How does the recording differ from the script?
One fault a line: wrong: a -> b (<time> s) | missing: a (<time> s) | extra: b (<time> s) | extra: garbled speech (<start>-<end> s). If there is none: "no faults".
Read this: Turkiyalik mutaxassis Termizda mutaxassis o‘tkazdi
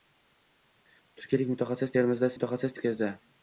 no faults